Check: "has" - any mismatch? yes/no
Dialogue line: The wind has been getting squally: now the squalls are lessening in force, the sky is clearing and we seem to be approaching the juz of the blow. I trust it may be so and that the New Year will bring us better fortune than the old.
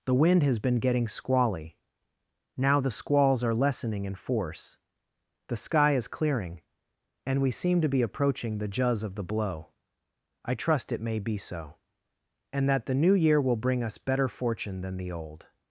no